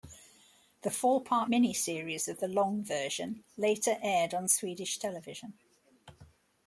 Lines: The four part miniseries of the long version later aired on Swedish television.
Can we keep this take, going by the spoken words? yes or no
yes